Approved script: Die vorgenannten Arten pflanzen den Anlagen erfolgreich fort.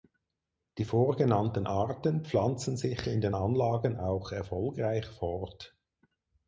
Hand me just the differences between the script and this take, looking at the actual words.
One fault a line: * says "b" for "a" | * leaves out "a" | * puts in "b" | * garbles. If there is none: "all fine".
* puts in "sich in"
* puts in "auch"